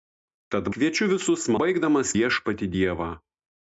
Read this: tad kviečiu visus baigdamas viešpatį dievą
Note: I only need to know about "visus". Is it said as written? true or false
true